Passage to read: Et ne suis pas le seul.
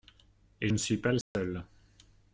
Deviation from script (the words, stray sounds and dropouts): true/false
true